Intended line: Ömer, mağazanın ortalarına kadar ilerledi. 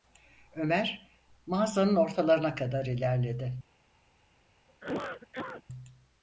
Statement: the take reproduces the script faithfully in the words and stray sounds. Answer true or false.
false